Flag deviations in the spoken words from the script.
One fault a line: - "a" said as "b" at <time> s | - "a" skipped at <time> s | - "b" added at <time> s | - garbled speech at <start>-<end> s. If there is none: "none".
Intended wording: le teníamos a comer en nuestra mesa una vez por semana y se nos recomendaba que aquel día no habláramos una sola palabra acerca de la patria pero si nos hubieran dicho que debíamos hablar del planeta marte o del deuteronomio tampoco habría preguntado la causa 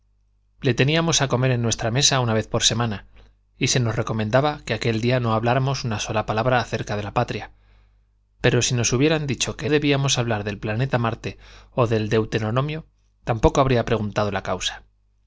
none